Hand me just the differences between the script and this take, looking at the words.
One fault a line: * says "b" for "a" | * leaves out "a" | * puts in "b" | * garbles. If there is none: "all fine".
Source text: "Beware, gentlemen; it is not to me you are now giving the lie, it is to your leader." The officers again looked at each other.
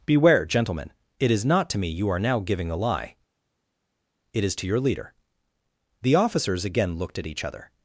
* says "a" for "the"